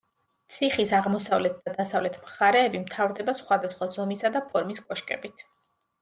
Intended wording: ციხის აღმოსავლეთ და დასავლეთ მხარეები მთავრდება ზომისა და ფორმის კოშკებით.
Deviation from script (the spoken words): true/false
true